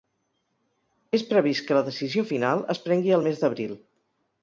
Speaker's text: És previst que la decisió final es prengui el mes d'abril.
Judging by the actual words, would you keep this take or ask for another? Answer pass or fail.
pass